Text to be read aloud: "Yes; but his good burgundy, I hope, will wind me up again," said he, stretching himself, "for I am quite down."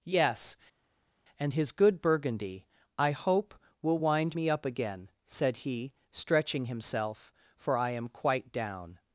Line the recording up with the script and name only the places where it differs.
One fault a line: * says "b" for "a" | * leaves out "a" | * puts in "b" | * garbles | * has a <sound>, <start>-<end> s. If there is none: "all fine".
* says "and" for "but"